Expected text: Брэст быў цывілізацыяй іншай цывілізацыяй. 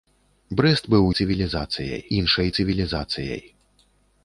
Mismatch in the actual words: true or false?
false